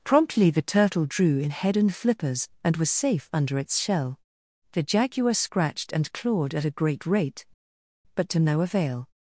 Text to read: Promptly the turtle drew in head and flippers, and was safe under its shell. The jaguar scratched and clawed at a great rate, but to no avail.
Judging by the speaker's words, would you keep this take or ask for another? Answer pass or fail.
pass